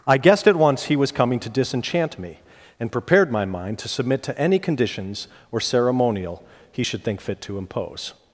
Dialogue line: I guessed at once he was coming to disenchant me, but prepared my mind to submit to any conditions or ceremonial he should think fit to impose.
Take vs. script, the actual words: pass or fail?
fail